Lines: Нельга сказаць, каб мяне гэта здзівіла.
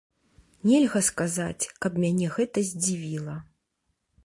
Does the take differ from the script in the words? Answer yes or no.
no